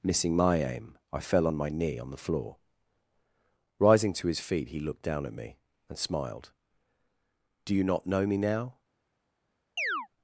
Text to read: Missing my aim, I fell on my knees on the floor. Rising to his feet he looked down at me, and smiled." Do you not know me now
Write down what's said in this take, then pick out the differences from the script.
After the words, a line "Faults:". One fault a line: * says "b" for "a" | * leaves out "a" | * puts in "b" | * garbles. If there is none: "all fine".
Missing my aim, I fell on my knee on the floor. Rising to his feet he looked down at me, and smiled." Do you not know me now
Faults:
* says "knee" for "knees"